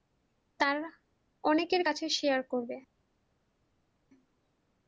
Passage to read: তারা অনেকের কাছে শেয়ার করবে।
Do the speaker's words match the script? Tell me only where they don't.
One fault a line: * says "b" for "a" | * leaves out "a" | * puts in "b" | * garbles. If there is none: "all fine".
all fine